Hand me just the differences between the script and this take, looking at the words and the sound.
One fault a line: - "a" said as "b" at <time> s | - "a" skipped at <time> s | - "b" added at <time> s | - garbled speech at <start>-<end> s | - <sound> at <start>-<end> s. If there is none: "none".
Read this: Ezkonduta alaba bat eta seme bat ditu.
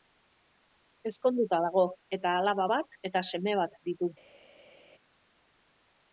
- "dago eta" added at 1.6 s